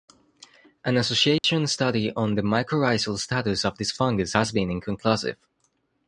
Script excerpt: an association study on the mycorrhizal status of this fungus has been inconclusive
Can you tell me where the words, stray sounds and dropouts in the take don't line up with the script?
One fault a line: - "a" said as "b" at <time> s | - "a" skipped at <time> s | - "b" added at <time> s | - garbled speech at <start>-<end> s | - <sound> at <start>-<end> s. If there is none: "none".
- dropout at 1.4-1.4 s